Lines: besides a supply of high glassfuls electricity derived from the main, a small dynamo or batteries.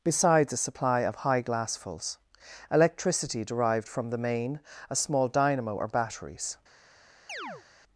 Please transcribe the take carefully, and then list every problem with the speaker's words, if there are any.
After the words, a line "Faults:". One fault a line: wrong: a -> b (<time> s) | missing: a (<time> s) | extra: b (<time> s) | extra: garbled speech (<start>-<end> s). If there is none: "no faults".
besides a supply of high glassfuls electricity derived from the main, a small dynamo or batteries.
Faults:
no faults